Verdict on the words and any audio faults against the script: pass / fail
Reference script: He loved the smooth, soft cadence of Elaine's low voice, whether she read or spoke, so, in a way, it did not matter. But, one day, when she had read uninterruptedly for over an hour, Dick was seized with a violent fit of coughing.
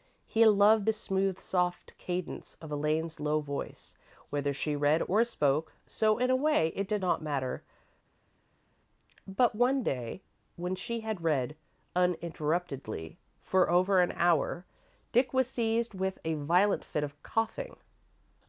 pass